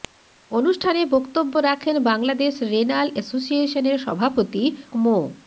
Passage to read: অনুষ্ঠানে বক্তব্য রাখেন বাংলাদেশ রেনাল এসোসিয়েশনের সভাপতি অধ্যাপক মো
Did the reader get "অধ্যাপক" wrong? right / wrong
wrong